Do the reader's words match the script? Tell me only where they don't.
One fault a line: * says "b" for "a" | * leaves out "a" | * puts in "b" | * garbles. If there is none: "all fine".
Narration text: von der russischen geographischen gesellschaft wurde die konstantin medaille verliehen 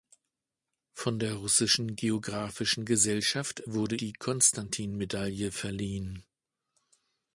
all fine